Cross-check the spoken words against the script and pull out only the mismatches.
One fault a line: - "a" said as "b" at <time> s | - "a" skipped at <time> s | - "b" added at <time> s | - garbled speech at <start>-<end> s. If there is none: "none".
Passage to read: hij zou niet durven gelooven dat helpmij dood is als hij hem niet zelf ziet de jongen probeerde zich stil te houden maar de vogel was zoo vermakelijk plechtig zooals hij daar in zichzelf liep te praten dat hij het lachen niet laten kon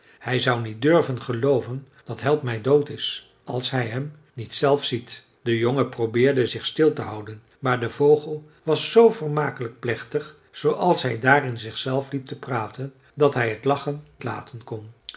- "niet" skipped at 14.0 s